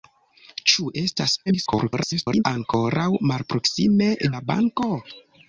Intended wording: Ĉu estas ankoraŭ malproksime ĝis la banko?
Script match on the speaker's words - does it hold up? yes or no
no